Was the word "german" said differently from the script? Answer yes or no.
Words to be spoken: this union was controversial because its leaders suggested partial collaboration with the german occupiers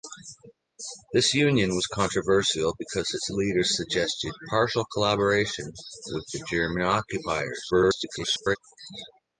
no